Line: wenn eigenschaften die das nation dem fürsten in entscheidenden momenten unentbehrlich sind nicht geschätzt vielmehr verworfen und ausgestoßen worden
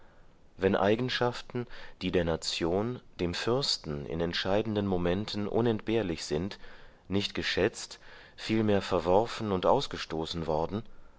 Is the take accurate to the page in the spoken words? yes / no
no